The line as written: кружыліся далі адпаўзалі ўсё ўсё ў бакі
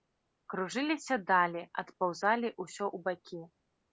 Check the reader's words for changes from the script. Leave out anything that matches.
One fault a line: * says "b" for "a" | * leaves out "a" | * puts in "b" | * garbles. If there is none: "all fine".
* leaves out "ўсё"